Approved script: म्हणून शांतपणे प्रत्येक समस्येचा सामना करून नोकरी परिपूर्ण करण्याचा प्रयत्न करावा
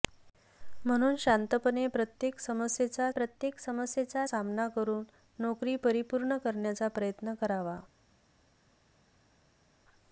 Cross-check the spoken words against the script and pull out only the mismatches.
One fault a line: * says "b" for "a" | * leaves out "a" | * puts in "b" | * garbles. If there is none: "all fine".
* puts in "प्रत्येक समस्येचा"